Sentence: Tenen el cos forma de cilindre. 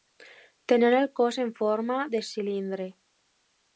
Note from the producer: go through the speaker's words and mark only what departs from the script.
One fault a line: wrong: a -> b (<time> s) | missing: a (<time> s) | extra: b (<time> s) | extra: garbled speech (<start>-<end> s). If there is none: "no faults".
extra: en (1.4 s)